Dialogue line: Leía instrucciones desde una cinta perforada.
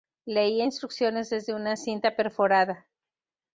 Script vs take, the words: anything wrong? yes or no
no